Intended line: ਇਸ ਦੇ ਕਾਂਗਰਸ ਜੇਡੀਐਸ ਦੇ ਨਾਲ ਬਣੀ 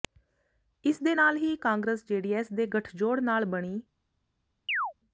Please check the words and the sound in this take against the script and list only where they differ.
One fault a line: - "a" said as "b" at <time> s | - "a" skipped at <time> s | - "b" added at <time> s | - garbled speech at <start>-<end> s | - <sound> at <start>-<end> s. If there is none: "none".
- "ਨਾਲ ਹੀ" added at 1.1 s
- "ਗਠਜੋੜ" added at 2.7 s
- chirp at 4.7-4.9 s